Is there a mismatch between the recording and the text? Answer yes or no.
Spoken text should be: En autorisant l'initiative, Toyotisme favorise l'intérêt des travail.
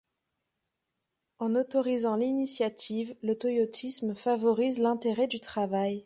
yes